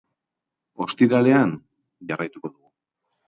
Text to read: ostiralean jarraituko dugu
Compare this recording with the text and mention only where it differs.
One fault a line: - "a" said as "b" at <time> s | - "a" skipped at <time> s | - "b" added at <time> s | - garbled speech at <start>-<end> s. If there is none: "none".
none